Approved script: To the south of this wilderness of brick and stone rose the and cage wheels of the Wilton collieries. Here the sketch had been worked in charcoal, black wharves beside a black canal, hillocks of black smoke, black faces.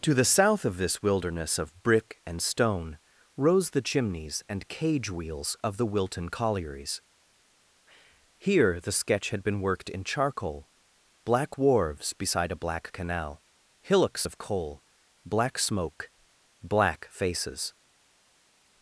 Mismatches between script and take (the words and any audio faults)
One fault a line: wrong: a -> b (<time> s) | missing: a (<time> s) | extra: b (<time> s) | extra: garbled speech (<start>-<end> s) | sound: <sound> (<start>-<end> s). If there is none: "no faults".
extra: chimneys (3.8 s)
extra: coal (14.4 s)